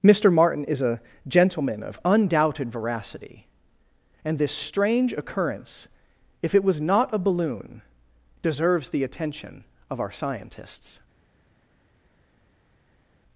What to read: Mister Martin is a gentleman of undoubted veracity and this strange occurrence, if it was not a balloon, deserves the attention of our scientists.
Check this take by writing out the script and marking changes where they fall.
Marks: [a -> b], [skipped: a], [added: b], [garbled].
Mister Martin is a gentleman of undoubted veracity and this strange occurrence, if it was not a balloon, deserves the attention of our scientists.